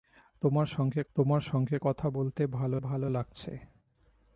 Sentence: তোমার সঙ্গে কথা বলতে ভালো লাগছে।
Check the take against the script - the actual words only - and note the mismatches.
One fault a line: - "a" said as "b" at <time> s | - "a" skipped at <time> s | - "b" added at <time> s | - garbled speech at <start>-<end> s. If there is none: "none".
- "তোমার সঙ্গে" added at 1.2 s
- "ভালো" added at 2.8 s